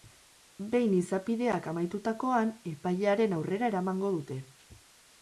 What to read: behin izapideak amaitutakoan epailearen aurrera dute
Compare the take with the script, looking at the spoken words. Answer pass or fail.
fail